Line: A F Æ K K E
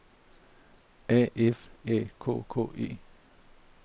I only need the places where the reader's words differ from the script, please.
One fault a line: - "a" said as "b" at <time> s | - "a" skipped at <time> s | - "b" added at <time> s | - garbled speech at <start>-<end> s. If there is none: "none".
none